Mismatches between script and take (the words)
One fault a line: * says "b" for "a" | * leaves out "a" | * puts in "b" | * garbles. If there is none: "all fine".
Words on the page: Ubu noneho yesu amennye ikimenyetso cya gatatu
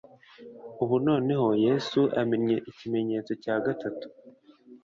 all fine